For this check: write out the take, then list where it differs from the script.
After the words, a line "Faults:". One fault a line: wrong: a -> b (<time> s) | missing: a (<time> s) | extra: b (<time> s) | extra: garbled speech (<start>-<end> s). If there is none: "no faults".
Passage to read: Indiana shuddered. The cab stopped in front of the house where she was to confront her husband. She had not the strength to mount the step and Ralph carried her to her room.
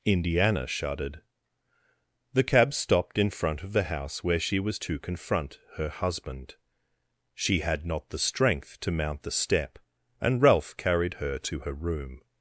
Indiana shuddered. The cab stopped in front of the house where she was to confront her husband. She had not the strength to mount the step and Ralph carried her to her room.
Faults:
no faults